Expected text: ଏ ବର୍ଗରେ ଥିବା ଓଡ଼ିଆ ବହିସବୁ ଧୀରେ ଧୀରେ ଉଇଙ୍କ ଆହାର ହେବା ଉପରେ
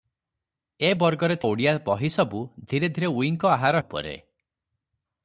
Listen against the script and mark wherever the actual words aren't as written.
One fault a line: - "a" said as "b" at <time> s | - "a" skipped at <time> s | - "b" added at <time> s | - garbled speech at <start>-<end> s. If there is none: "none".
- "ଥିବା" skipped at 1.4 s
- "ହେବା" skipped at 3.8 s